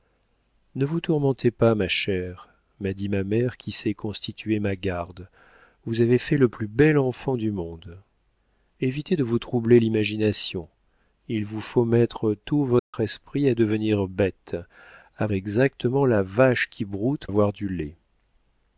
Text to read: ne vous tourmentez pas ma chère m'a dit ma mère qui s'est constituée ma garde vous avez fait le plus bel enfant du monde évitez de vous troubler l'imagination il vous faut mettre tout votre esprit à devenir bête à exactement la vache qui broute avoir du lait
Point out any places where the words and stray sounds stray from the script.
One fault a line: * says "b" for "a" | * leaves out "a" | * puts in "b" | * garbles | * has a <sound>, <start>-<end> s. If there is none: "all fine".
* has a dropout, 12.8-12.9 s